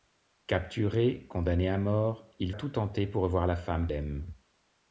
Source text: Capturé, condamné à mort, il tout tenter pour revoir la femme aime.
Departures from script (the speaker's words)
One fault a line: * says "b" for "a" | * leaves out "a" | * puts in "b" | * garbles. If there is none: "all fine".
all fine